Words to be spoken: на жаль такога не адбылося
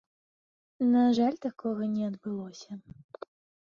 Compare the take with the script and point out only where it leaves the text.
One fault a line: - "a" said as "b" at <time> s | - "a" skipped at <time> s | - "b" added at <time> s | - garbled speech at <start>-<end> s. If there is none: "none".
none